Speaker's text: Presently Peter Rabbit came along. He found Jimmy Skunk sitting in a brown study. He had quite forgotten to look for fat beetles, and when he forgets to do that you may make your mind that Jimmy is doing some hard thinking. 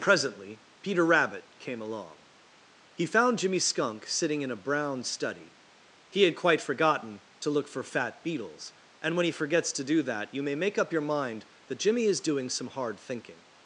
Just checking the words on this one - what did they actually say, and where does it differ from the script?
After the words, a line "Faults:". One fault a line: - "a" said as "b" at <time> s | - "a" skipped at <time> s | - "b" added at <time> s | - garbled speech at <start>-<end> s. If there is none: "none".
Presently Peter Rabbit came along. He found Jimmy Skunk sitting in a brown study. He had quite forgotten to look for fat beetles, and when he forgets to do that you may make up your mind that Jimmy is doing some hard thinking.
Faults:
- "up" added at 10.8 s